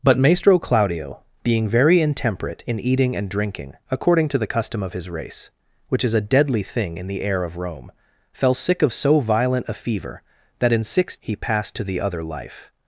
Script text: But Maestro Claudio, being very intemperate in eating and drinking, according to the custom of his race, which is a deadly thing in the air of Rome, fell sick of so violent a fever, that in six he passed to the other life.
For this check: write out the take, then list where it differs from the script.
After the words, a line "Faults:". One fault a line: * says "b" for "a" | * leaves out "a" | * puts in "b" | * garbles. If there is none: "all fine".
But Maestro Claudio, being very intemperate in eating and drinking, according to the custom of his race, which is a deadly thing in the air of Rome, fell sick of so violent a fever, that in six he passed to the other life.
Faults:
all fine